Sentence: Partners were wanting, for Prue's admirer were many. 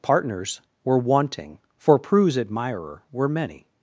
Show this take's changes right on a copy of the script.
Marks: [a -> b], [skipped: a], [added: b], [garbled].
Partners were wanting, for Prue's admirer were many.